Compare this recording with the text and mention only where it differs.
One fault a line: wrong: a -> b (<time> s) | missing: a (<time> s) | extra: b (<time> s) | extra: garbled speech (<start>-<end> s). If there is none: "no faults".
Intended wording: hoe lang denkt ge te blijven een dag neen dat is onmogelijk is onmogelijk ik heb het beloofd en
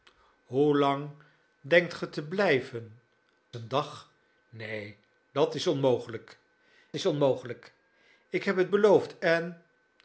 no faults